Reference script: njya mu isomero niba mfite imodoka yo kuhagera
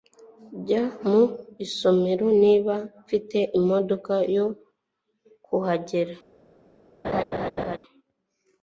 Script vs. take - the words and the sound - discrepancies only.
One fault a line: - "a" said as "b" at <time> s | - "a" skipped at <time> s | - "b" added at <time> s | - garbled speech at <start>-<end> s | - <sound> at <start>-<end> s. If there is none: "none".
- laugh at 7.0-7.8 s